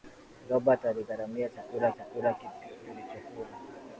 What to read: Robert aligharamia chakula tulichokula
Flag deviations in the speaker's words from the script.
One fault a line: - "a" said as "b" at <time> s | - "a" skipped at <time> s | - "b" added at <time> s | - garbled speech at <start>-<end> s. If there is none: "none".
- "chakula" added at 1.9 s